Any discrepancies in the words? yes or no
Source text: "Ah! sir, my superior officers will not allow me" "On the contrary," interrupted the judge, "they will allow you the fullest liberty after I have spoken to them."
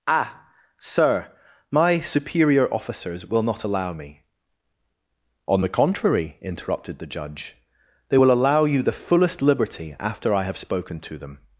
no